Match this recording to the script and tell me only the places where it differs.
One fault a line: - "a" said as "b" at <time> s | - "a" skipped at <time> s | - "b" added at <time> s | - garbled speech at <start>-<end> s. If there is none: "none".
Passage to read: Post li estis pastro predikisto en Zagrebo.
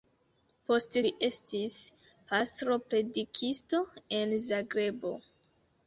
none